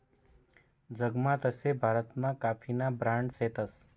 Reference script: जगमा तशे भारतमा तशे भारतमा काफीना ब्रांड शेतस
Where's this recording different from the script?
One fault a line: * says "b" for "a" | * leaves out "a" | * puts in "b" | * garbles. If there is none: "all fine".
* leaves out "तशे भारतमा"